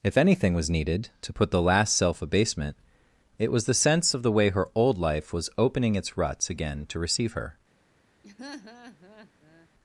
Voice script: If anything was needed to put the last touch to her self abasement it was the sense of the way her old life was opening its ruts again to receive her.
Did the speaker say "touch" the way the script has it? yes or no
no